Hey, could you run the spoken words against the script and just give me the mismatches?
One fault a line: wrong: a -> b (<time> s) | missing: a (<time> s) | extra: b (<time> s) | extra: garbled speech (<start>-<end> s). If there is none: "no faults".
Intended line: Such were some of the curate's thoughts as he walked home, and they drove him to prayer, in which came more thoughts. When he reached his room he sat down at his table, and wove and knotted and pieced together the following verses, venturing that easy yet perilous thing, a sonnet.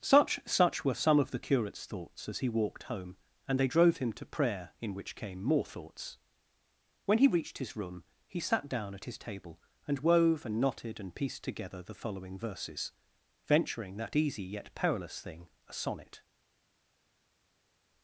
extra: such (0.5 s)